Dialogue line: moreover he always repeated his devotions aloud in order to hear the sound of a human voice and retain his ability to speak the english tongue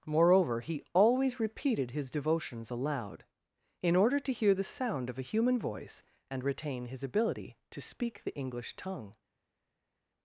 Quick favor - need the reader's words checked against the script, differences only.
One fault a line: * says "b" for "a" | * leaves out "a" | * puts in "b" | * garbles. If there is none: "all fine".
all fine